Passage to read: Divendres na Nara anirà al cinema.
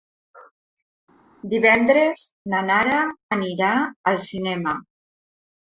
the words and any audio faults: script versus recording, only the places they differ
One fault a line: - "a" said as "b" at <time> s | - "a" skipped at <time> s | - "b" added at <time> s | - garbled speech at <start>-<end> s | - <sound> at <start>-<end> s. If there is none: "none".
none